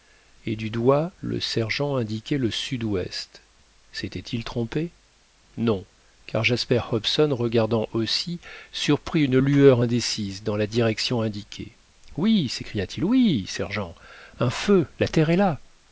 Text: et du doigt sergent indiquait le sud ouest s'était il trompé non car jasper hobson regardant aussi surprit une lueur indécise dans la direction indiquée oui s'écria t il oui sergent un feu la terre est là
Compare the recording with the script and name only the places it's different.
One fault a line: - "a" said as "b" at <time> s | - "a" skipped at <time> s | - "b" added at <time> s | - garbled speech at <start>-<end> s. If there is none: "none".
- "le" added at 1.2 s